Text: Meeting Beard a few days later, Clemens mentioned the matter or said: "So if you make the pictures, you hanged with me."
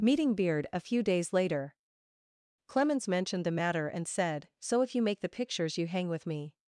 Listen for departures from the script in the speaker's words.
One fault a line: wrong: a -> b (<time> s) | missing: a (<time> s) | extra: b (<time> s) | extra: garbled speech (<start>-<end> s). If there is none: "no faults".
wrong: or -> and (3.9 s)
wrong: hanged -> hang (5.8 s)